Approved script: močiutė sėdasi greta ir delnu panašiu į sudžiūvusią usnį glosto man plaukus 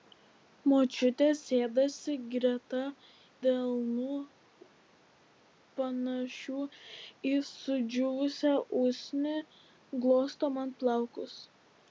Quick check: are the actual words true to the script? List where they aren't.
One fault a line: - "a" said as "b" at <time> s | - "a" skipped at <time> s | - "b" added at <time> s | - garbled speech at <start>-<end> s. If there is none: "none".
- "ir" skipped at 2.8 s